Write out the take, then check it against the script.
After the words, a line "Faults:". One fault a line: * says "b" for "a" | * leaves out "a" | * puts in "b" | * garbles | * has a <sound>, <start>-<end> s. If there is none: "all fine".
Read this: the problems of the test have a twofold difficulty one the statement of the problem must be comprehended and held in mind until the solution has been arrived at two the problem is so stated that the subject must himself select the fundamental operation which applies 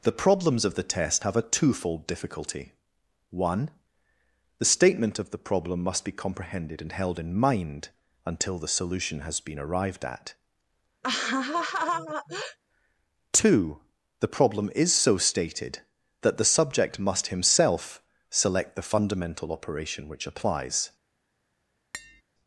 the problems of the test have a twofold difficulty one the statement of the problem must be comprehended and held in mind until the solution has been arrived at two the problem is so stated that the subject must himself select the fundamental operation which applies
Faults:
* has a laugh, 11.0-12.6 s
* has a tap, 21.9-22.2 s